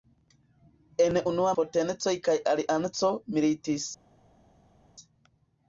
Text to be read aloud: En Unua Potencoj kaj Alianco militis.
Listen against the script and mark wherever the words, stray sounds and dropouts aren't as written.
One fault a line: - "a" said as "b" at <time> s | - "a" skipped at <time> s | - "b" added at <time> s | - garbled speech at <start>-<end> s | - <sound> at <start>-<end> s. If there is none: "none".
none